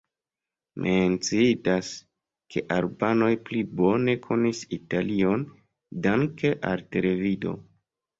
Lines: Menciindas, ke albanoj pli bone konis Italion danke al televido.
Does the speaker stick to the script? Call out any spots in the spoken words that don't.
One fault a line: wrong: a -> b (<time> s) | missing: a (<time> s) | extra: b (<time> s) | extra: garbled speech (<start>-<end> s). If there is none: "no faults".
no faults